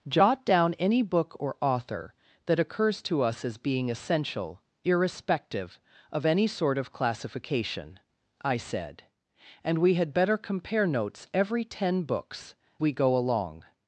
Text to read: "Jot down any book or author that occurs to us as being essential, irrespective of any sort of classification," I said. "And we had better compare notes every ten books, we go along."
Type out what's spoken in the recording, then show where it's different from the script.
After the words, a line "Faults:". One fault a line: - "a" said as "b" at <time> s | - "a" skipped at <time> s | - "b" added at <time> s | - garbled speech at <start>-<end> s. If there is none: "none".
"Jot down any book or author that occurs to us as being essential, irrespective of any sort of classification," I said. "And we had better compare notes every ten books, we go along."
Faults:
none